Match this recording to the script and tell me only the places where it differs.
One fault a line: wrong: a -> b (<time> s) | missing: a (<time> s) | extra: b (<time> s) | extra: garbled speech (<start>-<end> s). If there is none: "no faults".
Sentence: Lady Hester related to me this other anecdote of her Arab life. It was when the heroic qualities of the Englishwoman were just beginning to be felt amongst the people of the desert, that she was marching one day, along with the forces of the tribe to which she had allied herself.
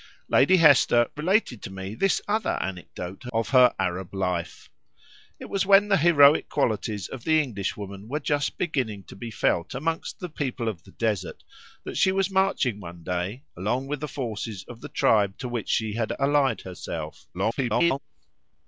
extra: garbled speech (17.3-18.0 s)